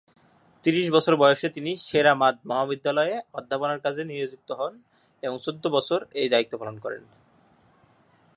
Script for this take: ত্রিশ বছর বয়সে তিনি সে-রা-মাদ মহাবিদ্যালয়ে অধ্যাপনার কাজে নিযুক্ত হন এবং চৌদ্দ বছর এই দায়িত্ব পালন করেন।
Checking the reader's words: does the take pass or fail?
pass